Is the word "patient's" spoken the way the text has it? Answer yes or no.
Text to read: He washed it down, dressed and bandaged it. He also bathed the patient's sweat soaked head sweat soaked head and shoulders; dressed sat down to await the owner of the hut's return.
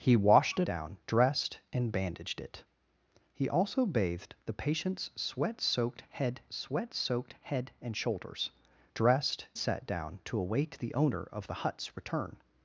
yes